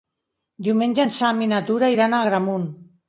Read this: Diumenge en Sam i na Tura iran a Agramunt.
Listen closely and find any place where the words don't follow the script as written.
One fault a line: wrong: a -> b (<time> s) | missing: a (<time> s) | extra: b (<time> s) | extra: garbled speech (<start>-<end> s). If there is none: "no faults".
no faults